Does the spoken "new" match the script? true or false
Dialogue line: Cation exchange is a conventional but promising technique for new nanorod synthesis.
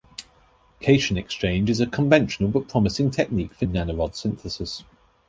false